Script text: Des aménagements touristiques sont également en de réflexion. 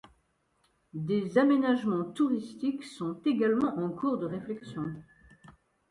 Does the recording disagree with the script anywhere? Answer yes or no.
yes